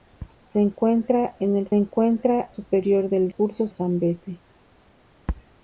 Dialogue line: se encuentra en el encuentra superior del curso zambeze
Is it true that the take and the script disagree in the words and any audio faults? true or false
false